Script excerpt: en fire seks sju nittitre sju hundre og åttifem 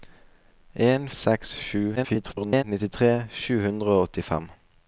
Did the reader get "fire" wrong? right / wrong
wrong